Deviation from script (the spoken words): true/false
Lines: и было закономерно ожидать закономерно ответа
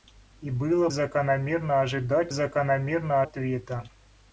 false